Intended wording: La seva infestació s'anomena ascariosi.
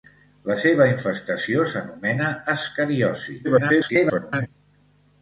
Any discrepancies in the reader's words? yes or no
yes